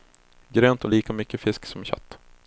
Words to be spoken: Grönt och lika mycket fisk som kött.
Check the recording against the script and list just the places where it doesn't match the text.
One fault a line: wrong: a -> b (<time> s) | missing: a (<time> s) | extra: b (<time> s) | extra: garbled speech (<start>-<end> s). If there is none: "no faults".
no faults